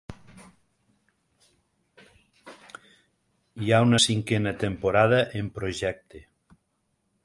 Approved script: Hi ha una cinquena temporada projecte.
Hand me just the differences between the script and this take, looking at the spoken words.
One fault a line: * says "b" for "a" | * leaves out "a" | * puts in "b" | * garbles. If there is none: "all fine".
* puts in "en"